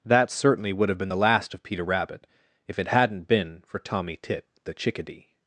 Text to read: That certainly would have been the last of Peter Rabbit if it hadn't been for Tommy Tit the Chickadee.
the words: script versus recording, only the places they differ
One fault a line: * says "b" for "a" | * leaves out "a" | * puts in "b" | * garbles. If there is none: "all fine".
all fine